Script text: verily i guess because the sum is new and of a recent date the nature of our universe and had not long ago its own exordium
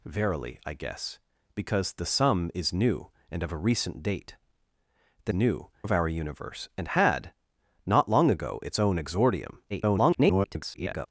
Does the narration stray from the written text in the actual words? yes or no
yes